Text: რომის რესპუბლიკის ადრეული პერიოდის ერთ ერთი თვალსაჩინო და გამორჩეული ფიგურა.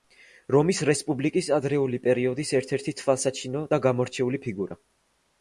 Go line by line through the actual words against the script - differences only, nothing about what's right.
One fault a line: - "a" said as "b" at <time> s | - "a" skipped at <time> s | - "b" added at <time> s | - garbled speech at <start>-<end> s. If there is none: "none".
none